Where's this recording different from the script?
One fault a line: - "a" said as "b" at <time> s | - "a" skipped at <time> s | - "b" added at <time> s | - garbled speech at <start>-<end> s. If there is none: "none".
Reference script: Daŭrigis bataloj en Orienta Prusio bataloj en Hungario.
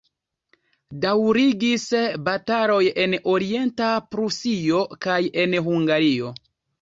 - "bataloj" said as "kaj" at 5.1 s